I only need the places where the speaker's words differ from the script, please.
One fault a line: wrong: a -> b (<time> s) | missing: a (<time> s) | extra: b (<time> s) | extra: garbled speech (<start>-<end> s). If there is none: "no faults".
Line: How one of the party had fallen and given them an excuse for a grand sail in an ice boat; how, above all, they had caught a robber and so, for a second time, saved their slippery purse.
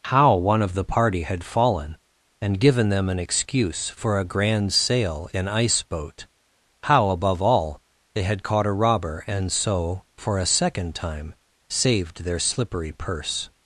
missing: an (5.5 s)